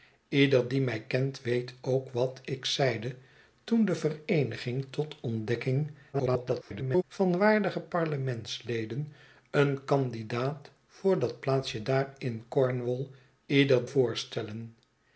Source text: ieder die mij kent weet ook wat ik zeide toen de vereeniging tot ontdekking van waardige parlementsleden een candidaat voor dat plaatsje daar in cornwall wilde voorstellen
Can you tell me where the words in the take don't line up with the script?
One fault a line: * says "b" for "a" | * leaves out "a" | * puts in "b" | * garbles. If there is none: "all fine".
* garbles
* says "ieder" for "wilde"